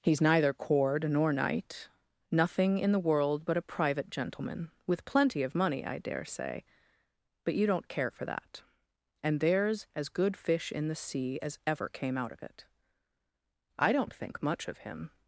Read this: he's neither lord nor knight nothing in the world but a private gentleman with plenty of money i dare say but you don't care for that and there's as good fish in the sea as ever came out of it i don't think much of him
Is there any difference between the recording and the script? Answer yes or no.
yes